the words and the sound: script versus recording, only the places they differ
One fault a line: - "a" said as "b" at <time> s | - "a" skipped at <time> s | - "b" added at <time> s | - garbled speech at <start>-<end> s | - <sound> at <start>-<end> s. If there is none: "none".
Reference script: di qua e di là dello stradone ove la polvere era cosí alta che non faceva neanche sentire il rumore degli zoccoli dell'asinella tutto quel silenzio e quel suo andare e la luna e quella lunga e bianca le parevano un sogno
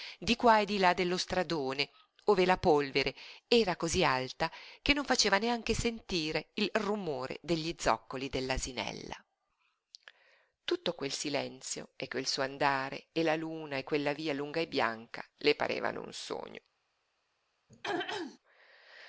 - "via" added at 14.1 s
- throat clearing at 17.7-18.4 s